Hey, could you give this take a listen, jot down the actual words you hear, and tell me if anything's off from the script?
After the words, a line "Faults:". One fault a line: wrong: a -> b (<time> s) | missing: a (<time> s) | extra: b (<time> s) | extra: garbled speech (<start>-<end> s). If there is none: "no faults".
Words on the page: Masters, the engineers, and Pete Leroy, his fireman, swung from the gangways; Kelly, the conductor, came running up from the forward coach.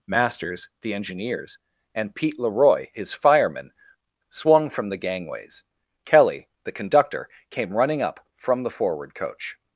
Masters, the engineers, and Pete Leroy, his fireman, swung from the gangways; Kelly, the conductor, came running up from the forward coach.
Faults:
no faults